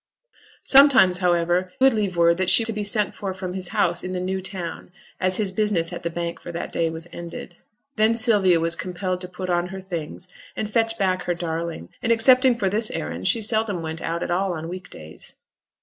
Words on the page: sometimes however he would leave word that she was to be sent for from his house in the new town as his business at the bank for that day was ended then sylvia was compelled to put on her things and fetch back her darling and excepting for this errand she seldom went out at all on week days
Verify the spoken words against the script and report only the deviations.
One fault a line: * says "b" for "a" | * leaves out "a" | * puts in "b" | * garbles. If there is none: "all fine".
* leaves out "he"
* leaves out "was"